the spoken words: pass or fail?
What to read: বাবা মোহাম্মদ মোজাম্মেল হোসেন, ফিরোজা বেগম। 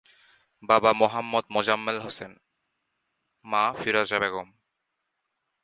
fail